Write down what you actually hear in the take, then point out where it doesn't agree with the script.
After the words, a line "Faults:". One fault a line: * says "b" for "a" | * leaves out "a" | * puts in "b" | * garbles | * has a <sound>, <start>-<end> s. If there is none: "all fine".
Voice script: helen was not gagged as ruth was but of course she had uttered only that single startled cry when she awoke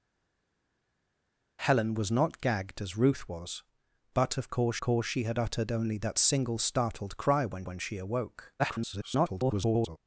helen was not gagged as ruth was but of course course she had uttered only that single startled cry when when she awoke [garbled]
Faults:
* puts in "course"
* puts in "when"
* garbles